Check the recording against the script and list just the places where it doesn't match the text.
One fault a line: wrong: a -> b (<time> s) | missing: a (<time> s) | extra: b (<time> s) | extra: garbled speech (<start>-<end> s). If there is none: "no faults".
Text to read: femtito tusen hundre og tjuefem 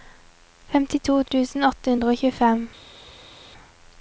extra: åtte (1.7 s)